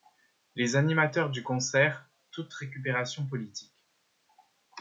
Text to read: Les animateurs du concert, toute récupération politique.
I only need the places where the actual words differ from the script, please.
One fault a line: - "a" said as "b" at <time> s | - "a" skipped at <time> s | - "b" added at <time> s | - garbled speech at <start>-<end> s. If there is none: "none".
none